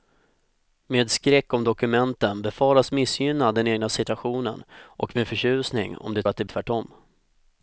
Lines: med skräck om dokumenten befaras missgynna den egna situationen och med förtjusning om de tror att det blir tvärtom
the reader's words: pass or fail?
fail